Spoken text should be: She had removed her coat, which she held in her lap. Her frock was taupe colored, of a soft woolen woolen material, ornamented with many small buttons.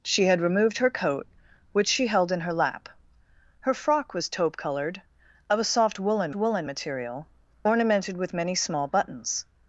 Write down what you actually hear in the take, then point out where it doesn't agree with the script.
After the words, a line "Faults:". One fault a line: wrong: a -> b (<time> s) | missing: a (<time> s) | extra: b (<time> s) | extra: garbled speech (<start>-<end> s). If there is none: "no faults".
She had removed her coat, which she held in her lap. Her frock was taupe colored, of a soft woolen woolen material, ornamented with many small buttons.
Faults:
no faults